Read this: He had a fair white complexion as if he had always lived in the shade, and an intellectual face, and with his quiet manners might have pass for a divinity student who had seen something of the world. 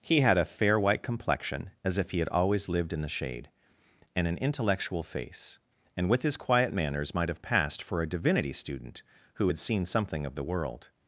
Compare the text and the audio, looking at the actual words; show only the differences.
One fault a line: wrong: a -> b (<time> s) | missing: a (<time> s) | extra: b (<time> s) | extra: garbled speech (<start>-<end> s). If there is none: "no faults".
wrong: pass -> passed (7.4 s)